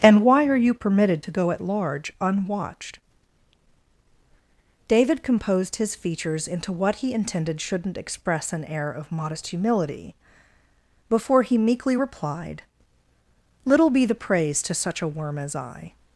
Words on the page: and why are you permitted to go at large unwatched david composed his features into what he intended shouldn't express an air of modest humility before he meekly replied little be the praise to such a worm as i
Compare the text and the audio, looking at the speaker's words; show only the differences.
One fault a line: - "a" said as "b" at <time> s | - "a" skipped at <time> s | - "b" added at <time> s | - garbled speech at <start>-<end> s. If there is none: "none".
none